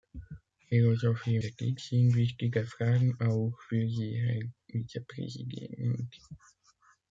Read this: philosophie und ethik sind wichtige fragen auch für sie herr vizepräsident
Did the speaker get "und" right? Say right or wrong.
wrong